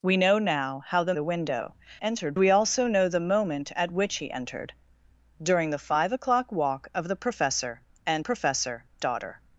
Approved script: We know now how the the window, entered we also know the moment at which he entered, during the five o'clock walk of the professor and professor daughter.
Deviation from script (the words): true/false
false